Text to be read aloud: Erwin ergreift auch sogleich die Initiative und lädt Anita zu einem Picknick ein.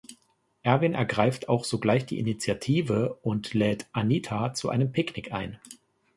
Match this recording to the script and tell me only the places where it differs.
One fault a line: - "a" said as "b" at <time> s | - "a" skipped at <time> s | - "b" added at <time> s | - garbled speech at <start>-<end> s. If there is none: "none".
none